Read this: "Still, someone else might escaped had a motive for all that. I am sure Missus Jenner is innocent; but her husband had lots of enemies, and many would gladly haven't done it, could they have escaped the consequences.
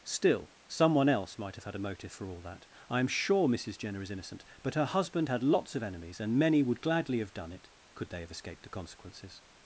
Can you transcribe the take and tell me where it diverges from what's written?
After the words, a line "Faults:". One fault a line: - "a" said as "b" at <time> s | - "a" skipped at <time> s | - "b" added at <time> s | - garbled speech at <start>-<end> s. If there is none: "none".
"Still, someone else might have had a motive for all that. I am sure Missus Jenner is innocent; but her husband had lots of enemies, and many would gladly have done it, could they have escaped the consequences.
Faults:
- "escaped" said as "have" at 1.5 s
- "haven't" said as "have" at 7.2 s